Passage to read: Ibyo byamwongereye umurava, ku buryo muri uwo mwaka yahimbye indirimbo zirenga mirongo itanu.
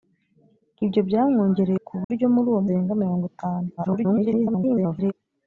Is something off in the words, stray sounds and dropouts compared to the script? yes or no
yes